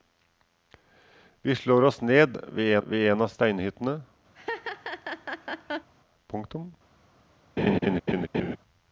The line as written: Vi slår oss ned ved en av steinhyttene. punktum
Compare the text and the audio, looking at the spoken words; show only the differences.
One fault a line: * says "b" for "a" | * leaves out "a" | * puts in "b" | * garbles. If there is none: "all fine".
* puts in "ved"